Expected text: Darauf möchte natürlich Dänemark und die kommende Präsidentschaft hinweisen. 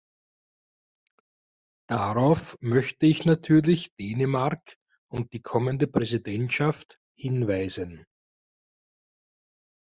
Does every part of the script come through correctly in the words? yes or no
no